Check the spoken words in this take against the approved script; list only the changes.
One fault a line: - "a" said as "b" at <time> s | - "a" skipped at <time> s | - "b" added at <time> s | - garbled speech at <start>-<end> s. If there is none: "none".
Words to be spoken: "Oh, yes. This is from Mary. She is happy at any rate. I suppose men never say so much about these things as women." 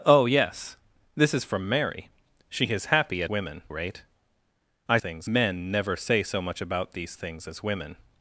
- "any" said as "women" at 3.3 s
- "suppose" said as "things" at 5.0 s